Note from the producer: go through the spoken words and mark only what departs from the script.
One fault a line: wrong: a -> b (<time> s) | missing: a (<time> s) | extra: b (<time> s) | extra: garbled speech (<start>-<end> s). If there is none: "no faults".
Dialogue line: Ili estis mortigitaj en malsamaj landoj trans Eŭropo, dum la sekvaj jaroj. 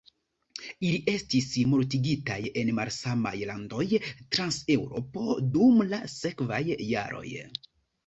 no faults